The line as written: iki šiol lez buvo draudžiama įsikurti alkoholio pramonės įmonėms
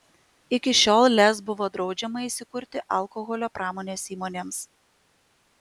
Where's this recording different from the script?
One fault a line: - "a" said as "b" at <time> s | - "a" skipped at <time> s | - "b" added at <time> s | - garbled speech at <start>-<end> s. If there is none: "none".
none